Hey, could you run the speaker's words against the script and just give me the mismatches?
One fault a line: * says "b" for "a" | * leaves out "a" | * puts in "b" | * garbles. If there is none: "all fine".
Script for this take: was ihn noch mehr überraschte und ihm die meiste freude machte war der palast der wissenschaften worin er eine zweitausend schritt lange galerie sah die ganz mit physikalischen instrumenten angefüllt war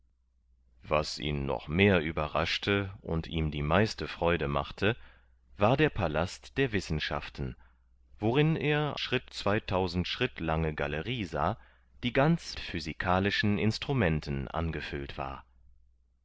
* says "schritt" for "eine"
* leaves out "mit"